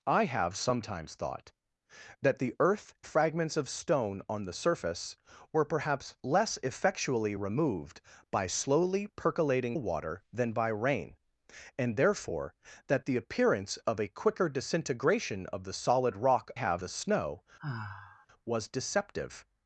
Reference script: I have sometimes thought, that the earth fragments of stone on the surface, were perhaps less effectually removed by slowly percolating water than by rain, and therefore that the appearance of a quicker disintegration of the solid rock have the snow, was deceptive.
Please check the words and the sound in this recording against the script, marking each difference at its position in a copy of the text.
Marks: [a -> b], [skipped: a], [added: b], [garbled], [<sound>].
I have sometimes thought, that the earth fragments of stone on the surface, were perhaps less effectually removed by slowly percolating water than by rain, and therefore that the appearance of a quicker disintegration of the solid rock have the snow, [sigh] was deceptive.